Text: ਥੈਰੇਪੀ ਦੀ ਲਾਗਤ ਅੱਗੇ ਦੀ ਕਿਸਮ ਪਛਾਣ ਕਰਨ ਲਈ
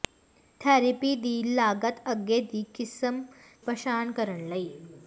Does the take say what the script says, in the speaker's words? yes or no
yes